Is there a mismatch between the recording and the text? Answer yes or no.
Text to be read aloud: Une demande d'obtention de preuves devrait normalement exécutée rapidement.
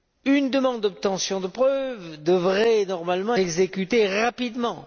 no